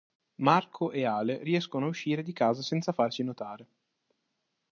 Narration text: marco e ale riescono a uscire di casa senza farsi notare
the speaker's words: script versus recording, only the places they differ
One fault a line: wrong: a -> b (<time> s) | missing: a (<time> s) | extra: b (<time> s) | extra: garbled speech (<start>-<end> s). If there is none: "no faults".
no faults